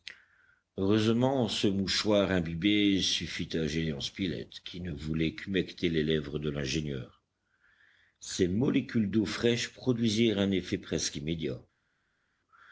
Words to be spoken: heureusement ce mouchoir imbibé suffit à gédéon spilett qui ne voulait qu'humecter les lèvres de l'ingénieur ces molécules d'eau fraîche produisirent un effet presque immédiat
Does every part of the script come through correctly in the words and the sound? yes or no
yes